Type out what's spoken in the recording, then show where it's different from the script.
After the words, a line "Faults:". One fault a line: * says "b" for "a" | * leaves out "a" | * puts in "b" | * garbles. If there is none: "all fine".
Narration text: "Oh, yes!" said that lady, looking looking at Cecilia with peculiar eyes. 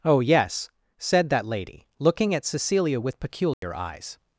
"Oh, yes!" said that lady, looking at Cecilia with peculiar eyes.
Faults:
* leaves out "looking"